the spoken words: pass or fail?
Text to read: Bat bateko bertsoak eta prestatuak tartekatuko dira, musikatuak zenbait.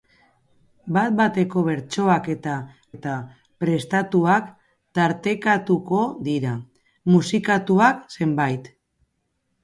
fail